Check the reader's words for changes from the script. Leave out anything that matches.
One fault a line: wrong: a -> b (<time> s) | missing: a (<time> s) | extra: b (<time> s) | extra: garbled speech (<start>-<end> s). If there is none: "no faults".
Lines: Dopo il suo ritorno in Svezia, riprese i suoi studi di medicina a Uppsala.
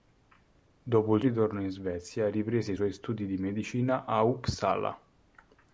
missing: suo (1.2 s)